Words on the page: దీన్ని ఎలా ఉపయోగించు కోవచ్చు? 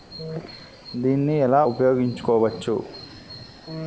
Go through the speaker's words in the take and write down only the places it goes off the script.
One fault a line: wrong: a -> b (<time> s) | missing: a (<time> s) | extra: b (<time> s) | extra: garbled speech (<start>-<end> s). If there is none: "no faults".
no faults